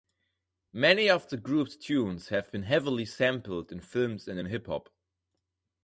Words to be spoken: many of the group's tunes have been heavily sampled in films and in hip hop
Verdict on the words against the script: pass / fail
pass